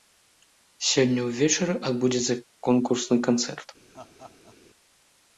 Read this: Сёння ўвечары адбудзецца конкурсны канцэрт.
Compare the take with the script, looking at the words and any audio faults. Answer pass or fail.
fail